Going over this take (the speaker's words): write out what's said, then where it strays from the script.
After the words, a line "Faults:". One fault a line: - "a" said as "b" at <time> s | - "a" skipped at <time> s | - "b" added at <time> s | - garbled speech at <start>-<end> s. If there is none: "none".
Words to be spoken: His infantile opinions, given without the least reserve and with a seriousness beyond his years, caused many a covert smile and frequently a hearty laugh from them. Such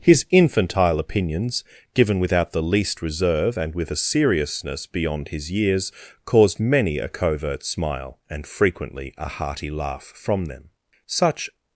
His infantile opinions, given without the least reserve and with a seriousness beyond his years, caused many a covert smile and frequently a hearty laugh from them. Such
Faults:
none